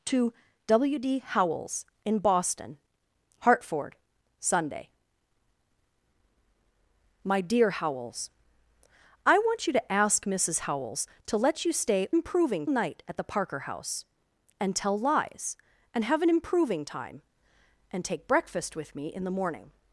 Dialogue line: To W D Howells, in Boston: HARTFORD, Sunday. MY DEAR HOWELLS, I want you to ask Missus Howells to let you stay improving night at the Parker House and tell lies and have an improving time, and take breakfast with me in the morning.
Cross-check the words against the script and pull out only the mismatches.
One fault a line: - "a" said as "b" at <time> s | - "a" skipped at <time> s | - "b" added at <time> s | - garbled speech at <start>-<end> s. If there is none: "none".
none